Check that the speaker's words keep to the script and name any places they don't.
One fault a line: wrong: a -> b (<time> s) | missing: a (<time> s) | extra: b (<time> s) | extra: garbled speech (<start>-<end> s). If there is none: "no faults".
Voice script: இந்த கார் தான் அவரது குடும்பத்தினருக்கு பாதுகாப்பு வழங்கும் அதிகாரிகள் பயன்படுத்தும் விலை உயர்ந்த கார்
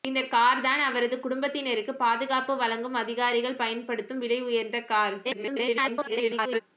extra: garbled speech (5.2-6.6 s)